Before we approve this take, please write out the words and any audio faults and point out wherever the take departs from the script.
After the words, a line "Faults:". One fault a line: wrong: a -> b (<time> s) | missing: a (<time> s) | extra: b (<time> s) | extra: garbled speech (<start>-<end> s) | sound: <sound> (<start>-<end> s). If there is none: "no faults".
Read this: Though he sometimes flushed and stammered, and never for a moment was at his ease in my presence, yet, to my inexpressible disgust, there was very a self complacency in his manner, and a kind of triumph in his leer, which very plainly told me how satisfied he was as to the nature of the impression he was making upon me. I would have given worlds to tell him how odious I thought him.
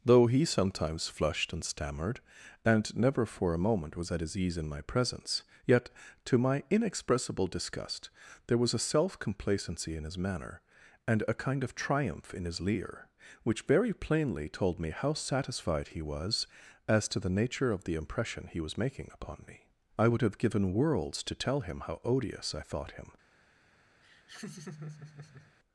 Though he sometimes flushed and stammered, and never for a moment was at his ease in my presence, yet, to my inexpressible disgust, there was a self complacency in his manner, and a kind of triumph in his leer, which very plainly told me how satisfied he was as to the nature of the impression he was making upon me. I would have given worlds to tell him how odious I thought him.
Faults:
missing: very (8.7 s)
sound: laugh (24.0-25.5 s)